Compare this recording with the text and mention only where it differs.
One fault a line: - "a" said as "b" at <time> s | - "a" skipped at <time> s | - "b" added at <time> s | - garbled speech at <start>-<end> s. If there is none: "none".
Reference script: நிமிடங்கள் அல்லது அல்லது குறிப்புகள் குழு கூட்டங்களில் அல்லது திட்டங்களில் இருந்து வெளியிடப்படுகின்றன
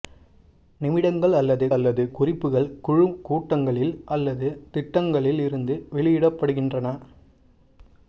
none